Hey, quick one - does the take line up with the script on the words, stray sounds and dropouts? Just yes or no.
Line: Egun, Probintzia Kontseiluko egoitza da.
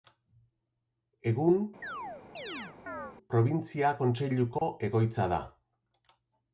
no